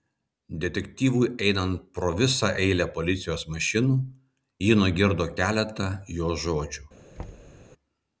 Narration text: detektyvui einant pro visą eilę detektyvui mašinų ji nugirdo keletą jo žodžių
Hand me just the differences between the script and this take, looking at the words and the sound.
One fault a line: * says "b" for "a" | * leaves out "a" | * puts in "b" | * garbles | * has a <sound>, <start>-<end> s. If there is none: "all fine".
* says "policijos" for "detektyvui"
* has a thud, 7.2-7.6 s